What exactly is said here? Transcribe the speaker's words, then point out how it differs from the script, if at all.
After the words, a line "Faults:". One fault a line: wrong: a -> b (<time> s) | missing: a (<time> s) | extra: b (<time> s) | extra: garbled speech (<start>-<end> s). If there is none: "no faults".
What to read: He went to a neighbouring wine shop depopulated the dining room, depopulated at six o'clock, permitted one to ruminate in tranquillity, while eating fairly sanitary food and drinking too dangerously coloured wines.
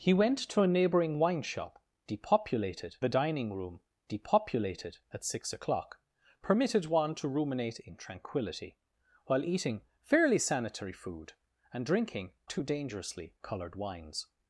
He went to a neighbouring wine shop depopulated the dining room, depopulated at six o'clock, permitted one to ruminate in tranquillity, while eating fairly sanitary food and drinking too dangerously coloured wines.
Faults:
no faults